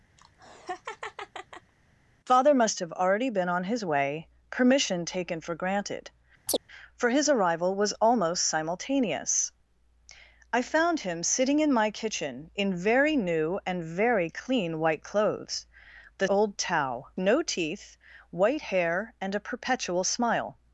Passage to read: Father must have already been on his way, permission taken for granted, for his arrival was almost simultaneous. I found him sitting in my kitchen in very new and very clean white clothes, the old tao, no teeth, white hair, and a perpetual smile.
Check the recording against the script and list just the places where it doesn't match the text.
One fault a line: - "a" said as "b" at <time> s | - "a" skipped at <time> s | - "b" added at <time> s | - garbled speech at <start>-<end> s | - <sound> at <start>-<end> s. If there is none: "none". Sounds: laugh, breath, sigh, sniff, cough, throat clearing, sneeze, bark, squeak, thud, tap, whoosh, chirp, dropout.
- laugh at 0.2-1.7 s
- chirp at 6.5-6.6 s